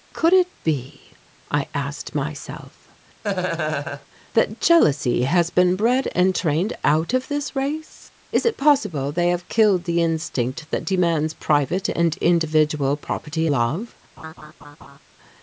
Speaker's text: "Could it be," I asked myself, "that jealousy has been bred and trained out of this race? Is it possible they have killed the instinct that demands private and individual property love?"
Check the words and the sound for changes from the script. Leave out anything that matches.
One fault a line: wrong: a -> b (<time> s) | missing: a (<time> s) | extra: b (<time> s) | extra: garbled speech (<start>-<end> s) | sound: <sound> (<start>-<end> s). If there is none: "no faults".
sound: laugh (3.2-4.1 s)
sound: laugh (14.2-15.0 s)